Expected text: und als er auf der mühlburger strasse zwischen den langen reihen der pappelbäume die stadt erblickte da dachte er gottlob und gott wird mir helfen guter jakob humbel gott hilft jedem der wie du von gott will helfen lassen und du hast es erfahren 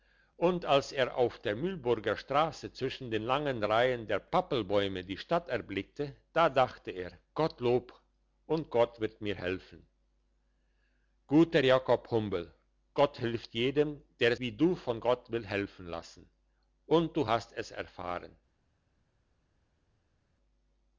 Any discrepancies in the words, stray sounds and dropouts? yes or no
no